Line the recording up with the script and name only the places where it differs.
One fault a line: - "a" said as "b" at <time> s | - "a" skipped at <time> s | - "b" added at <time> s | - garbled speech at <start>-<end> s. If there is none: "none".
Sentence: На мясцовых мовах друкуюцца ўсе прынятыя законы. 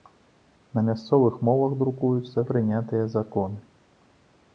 - "ўсе" skipped at 2.4 s